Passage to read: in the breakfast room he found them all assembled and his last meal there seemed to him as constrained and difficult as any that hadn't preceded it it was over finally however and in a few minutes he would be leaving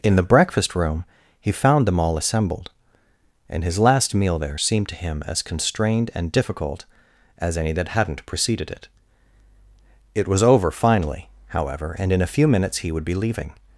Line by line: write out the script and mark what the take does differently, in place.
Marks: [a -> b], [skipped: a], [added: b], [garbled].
in the breakfast room he found them all assembled and his last meal there seemed to him as constrained and difficult as any that hadn't preceded it it was over finally however and in a few minutes he would be leaving